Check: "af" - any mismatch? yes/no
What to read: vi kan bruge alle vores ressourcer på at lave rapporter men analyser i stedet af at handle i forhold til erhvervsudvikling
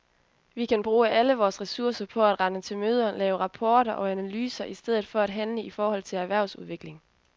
yes